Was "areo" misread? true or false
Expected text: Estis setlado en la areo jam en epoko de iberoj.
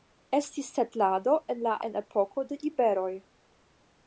true